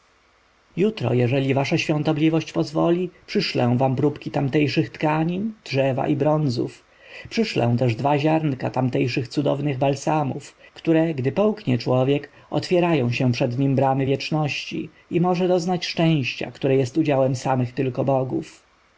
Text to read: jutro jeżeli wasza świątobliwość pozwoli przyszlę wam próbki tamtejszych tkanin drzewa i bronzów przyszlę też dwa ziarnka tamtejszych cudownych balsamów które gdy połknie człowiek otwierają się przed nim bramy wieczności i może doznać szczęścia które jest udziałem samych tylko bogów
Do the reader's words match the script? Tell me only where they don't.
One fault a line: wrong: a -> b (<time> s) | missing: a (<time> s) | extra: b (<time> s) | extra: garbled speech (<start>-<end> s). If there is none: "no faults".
no faults